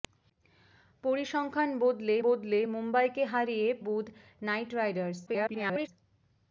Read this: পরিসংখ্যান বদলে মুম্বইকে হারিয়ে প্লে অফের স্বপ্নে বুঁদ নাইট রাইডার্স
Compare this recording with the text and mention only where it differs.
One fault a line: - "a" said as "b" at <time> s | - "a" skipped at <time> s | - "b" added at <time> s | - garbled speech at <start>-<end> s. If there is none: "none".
- "বদলে" added at 2.2 s
- "প্লে অফের স্বপ্নে" skipped at 3.7 s
- garbled speech at 5.3-5.9 s